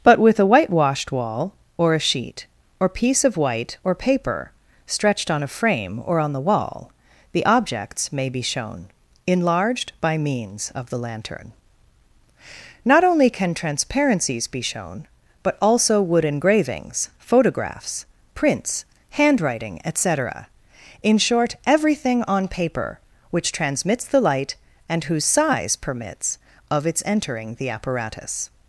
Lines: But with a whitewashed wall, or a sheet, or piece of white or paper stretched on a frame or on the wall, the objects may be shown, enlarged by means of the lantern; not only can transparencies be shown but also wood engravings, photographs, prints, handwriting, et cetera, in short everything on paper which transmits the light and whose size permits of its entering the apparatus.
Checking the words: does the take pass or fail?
pass